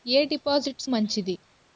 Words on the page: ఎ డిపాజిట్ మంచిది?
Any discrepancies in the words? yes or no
no